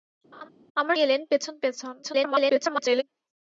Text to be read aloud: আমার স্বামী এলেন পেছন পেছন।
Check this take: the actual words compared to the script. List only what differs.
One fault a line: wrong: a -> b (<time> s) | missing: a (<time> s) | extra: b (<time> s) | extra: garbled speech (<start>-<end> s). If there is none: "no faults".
missing: স্বামী (1.0 s)
extra: garbled speech (2.0-3.0 s)